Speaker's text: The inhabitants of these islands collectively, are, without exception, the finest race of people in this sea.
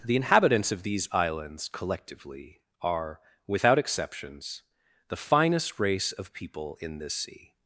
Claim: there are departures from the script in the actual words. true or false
true